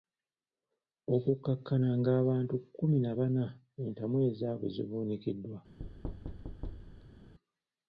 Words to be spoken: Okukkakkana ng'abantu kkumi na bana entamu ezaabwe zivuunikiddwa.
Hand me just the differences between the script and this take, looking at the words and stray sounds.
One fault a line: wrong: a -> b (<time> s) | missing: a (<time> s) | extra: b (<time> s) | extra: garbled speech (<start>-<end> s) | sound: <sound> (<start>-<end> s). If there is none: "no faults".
sound: thud (5.8-7.3 s)